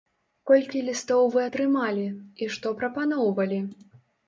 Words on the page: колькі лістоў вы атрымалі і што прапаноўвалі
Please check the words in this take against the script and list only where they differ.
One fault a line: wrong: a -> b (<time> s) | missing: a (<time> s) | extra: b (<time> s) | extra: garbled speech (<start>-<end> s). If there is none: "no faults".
no faults